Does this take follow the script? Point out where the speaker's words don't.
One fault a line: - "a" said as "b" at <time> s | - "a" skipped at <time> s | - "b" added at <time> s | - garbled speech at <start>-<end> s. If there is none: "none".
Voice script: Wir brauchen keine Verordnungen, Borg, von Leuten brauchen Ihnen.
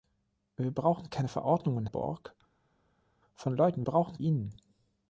none